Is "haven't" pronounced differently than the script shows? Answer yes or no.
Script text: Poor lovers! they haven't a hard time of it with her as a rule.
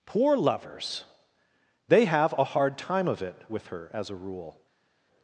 yes